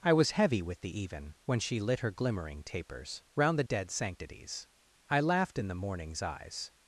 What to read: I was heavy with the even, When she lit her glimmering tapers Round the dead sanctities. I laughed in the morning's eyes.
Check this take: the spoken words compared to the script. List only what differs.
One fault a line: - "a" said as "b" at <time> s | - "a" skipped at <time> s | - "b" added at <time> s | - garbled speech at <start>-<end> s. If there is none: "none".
none